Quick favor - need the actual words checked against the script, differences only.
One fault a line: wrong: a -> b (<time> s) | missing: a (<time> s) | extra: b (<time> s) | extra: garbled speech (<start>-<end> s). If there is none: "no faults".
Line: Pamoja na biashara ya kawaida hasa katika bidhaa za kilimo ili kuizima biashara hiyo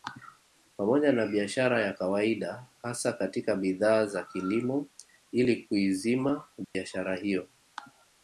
no faults